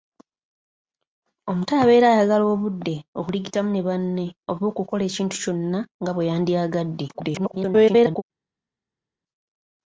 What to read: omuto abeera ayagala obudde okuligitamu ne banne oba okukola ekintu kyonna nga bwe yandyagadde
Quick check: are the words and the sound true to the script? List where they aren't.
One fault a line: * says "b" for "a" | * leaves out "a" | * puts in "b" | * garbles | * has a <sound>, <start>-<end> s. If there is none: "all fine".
* garbles